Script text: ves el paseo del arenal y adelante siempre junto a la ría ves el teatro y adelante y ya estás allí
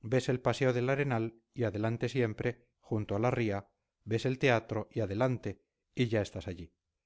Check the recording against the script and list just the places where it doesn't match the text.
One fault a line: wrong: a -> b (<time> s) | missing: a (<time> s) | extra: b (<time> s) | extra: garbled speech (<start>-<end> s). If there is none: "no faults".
no faults